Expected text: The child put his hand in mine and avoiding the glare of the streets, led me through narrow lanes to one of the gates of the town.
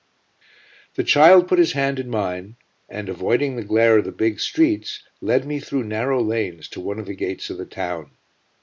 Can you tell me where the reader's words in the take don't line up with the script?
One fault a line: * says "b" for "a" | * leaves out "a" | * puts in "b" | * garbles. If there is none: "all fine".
* puts in "big"